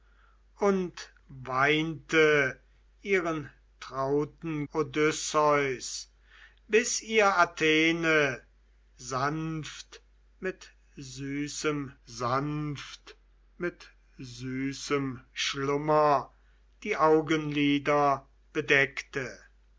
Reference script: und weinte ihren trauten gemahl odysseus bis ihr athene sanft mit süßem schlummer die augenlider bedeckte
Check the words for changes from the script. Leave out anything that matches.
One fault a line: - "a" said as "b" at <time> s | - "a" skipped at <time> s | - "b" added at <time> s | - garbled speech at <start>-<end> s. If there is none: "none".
- "gemahl" skipped at 4.7 s
- "sanft mit süßem" added at 12.0 s